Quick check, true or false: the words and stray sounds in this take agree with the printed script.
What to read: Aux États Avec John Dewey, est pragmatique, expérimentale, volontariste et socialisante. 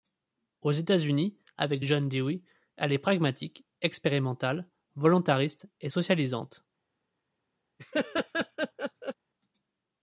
false